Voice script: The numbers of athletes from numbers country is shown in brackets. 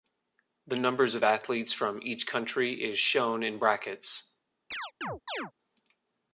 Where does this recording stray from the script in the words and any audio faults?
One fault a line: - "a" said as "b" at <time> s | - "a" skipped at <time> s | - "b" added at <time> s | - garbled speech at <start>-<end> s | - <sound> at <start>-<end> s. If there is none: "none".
- "numbers" said as "each" at 2.0 s
- chirp at 4.7-5.5 s